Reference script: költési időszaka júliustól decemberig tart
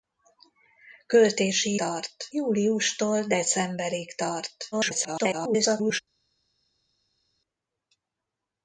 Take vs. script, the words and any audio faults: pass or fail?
fail